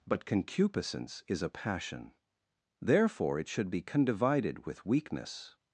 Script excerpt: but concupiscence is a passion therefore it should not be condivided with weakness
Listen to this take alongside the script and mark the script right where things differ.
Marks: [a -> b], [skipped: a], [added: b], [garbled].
but concupiscence is a passion therefore it should [skipped: not] be condivided with weakness